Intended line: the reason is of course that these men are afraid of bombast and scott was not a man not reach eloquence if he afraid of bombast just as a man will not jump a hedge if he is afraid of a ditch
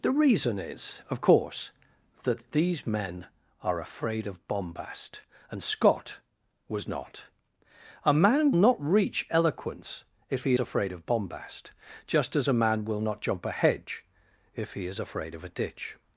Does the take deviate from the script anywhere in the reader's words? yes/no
no